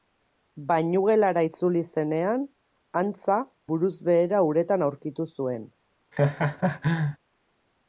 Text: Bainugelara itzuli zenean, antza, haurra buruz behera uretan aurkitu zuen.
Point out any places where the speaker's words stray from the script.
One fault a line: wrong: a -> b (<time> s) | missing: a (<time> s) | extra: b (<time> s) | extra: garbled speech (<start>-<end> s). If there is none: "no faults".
missing: haurra (3.4 s)